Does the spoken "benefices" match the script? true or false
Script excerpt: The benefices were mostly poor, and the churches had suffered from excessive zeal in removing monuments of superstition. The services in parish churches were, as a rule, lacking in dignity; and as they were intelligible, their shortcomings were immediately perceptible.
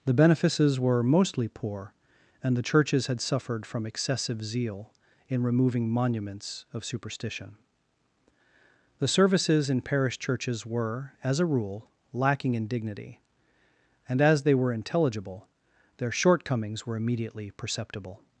true